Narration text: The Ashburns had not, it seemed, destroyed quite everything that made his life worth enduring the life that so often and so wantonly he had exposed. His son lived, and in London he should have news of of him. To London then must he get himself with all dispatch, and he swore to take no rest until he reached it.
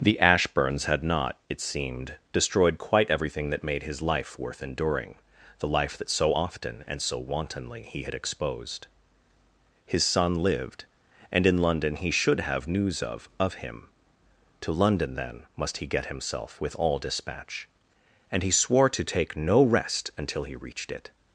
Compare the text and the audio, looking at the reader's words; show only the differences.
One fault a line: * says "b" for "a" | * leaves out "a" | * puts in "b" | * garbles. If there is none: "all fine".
all fine